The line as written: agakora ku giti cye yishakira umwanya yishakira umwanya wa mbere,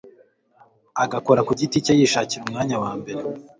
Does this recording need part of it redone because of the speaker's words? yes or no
yes